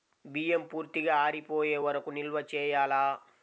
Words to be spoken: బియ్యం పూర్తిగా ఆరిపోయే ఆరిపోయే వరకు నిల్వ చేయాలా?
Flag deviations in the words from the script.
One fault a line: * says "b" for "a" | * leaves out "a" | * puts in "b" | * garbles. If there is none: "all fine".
* leaves out "ఆరిపోయే"